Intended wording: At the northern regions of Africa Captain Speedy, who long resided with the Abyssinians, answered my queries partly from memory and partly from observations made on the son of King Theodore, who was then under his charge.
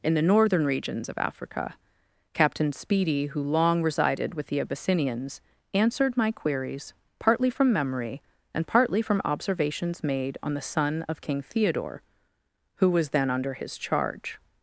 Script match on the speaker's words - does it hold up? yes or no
no